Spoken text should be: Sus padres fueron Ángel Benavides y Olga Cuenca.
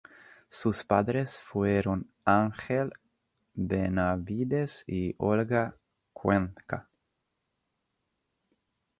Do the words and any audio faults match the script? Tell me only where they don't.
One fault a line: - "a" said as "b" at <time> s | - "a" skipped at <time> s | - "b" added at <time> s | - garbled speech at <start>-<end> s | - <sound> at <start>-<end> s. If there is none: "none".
none